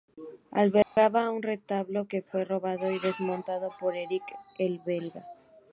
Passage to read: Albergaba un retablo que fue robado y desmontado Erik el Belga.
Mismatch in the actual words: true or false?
true